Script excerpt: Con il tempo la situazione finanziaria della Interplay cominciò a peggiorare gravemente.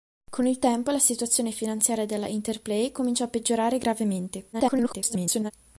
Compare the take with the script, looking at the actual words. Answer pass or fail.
fail